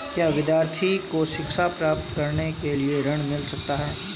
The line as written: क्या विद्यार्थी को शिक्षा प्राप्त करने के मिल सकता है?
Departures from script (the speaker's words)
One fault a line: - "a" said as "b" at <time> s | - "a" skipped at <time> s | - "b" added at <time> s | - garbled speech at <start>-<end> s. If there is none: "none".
- "लिए ऋण" added at 2.7 s